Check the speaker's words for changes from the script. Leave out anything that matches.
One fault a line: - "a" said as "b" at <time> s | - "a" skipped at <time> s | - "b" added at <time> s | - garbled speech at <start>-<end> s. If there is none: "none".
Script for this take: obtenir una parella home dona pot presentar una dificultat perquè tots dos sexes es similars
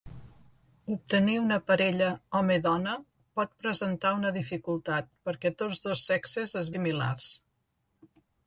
none